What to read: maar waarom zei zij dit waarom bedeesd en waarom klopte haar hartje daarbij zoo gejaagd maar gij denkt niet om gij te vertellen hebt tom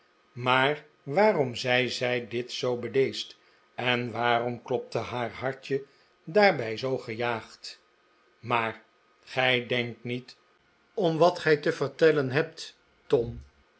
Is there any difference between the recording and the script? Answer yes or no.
yes